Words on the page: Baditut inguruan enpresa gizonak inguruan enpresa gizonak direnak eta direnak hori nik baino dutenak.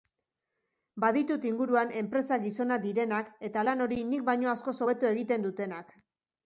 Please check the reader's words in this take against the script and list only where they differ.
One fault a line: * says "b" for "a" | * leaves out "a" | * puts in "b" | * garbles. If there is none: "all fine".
* leaves out "inguruan enpresa gizonak"
* says "lan" for "direnak"
* puts in "askoz hobeto egiten"